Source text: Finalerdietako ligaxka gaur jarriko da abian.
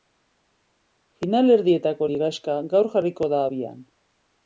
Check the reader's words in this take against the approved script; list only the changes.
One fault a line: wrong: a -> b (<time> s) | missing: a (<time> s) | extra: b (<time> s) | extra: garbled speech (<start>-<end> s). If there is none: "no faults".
no faults